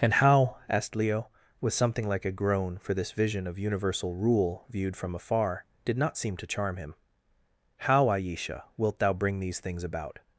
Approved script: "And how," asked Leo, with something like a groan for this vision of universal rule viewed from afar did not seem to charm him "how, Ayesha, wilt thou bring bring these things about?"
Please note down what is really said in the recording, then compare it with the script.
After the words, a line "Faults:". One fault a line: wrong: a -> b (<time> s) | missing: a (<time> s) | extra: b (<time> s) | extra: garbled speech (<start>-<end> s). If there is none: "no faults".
"And how," asked Leo, with something like a groan for this vision of universal rule viewed from afar did not seem to charm him "how, Ayesha, wilt thou bring these things about?"
Faults:
missing: bring (9.4 s)